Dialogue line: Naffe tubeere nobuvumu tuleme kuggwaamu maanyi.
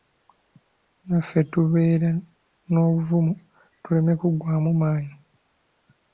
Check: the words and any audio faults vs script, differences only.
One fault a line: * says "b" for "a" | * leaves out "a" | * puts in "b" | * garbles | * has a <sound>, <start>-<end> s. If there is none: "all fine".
all fine